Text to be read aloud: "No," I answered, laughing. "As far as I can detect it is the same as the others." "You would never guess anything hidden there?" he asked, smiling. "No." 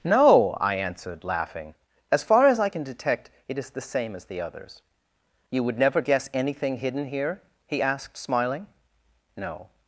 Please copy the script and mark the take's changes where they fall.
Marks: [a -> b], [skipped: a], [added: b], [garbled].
"No," I answered, laughing. "As far as I can detect it is the same as the others." "You would never guess anything hidden [there?" -> here] he asked, smiling. "No."